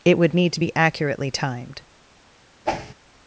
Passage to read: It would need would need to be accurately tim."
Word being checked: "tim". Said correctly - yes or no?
no